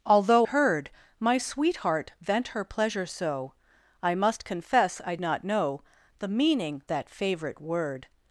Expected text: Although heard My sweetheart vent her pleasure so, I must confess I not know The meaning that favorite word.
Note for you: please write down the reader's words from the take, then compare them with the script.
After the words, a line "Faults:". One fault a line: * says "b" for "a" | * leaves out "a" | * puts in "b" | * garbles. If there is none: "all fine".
Although heard My sweetheart vent her pleasure so, I must confess I not know The meaning that favorite word.
Faults:
all fine